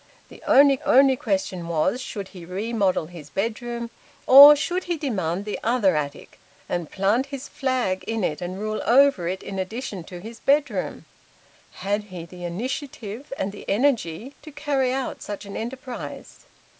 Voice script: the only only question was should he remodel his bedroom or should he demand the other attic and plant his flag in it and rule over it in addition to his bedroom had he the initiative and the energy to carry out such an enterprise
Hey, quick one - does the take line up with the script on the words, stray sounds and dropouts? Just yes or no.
yes